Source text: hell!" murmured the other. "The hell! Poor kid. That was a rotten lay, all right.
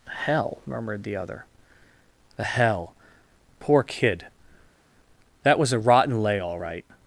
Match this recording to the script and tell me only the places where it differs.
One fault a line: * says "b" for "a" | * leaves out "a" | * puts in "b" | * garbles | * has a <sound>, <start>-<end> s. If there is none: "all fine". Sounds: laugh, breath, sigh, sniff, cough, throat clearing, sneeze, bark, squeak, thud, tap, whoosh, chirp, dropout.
all fine